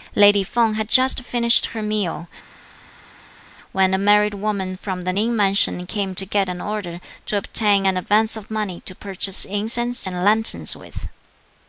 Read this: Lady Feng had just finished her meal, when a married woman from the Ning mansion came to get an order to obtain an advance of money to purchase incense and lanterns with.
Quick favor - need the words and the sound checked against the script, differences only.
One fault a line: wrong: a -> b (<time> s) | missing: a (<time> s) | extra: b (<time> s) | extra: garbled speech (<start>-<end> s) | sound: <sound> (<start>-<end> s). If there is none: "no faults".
no faults